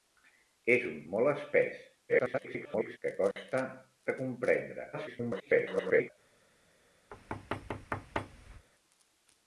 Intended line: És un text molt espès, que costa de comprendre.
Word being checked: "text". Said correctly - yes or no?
no